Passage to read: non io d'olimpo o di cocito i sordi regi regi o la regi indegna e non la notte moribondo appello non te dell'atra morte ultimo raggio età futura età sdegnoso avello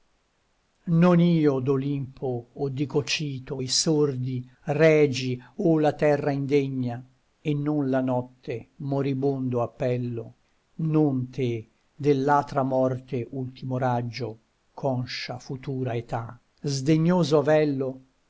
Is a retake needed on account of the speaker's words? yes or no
yes